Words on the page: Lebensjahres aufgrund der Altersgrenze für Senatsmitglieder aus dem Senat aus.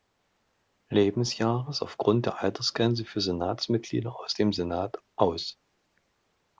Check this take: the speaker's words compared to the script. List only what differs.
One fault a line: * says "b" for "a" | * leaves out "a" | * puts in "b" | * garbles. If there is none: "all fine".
all fine